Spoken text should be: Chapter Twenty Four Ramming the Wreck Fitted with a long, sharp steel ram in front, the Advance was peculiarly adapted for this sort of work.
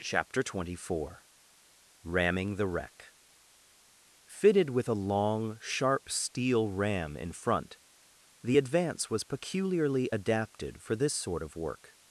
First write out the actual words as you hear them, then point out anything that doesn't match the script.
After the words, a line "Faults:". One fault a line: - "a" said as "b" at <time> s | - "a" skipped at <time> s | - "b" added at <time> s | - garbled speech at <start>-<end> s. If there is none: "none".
Chapter Twenty Four Ramming the Wreck Fitted with a long, sharp steel ram in front, the Advance was peculiarly adapted for this sort of work.
Faults:
none